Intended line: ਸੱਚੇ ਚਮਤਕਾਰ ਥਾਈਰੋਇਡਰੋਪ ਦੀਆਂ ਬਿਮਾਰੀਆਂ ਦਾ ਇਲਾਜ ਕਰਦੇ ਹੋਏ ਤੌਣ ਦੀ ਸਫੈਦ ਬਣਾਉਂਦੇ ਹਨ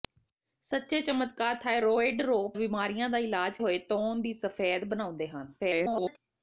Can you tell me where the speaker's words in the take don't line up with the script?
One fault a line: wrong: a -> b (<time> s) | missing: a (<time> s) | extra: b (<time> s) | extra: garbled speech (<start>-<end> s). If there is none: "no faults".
missing: ਦੀਆਂ (2.6 s)
missing: ਕਰਦੇ (3.6 s)
extra: garbled speech (5.6-6.2 s)